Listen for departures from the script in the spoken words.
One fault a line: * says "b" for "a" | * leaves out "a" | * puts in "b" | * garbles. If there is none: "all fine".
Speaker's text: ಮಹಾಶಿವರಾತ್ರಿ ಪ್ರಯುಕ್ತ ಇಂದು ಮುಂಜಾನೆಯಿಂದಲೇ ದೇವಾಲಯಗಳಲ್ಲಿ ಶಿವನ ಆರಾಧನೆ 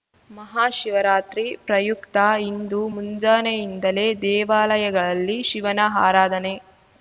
all fine